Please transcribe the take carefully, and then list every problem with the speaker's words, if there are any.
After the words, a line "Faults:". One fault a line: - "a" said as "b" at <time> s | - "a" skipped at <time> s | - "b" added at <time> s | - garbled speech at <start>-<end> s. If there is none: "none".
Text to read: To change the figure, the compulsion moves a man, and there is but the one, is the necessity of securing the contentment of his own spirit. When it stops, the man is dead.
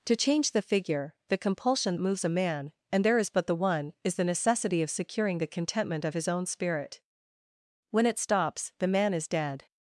To change the figure, the compulsion moves a man, and there is but the one, is the necessity of securing the contentment of his own spirit. When it stops, the man is dead.
Faults:
none